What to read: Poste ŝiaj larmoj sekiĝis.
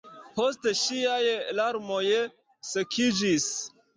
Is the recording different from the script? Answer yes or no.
no